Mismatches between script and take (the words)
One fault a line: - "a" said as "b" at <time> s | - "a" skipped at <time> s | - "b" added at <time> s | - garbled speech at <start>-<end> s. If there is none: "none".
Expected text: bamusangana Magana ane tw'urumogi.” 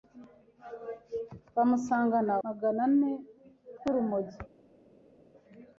none